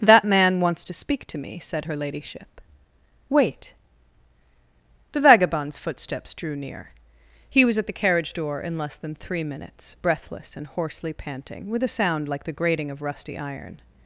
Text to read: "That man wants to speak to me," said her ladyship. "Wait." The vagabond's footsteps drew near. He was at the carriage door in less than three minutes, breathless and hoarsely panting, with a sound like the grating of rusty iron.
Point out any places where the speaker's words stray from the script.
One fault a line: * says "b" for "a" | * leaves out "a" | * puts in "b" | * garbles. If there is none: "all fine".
all fine